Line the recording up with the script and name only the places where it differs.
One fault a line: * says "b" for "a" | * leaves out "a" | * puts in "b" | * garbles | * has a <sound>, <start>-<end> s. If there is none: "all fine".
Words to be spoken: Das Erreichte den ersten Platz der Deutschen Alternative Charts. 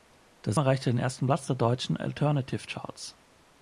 all fine